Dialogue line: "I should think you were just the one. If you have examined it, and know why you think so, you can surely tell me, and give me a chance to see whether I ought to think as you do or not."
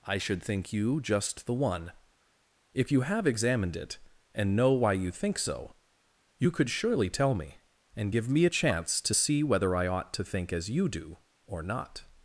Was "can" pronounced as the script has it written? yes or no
no